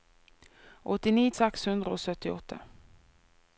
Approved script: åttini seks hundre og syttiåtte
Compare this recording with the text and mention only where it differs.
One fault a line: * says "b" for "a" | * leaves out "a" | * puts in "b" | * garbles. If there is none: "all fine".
all fine